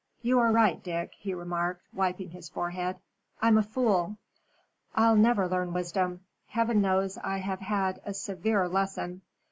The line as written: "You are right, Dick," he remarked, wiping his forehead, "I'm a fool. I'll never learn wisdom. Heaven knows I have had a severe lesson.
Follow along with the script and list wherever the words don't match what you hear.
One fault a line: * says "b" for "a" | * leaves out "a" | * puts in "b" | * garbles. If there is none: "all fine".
all fine